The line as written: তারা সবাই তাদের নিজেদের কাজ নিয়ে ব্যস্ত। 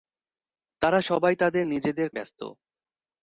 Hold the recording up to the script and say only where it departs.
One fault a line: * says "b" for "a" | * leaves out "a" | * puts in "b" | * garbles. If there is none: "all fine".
* leaves out "কাজ নিয়ে"